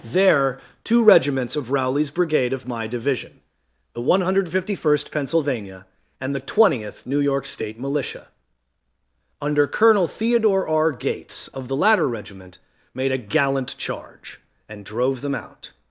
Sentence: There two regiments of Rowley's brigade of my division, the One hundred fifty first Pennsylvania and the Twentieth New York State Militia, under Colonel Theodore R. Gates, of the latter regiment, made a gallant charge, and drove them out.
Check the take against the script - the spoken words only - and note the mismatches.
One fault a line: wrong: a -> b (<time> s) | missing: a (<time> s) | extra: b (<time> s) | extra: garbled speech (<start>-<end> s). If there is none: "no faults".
no faults